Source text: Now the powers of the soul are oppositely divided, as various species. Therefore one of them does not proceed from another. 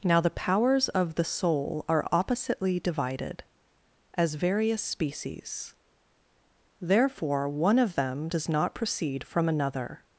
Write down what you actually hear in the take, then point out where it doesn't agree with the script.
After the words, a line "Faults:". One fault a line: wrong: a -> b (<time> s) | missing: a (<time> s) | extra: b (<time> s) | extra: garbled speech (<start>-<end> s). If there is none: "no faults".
Now the powers of the soul are oppositely divided, as various species. Therefore one of them does not proceed from another.
Faults:
no faults